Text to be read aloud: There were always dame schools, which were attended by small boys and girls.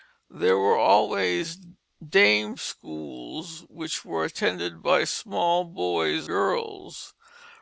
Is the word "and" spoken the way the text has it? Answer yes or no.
no